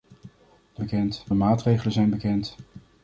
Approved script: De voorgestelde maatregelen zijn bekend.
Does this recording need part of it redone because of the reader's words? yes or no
yes